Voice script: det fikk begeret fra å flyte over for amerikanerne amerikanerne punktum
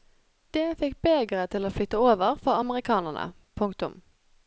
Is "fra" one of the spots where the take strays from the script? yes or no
yes